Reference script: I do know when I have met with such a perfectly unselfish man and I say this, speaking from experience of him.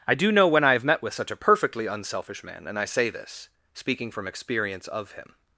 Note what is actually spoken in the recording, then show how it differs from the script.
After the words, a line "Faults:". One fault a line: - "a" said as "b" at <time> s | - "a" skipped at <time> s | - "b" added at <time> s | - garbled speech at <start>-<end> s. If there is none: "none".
I do know when I have met with such a perfectly unselfish man and I say this, speaking from experience of him.
Faults:
none